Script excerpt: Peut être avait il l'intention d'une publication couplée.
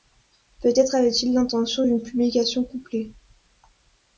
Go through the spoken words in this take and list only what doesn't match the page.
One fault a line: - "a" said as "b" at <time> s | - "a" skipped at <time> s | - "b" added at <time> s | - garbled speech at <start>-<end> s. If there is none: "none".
none